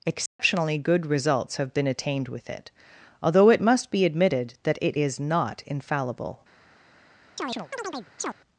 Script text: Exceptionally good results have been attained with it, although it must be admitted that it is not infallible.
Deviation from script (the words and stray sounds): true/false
true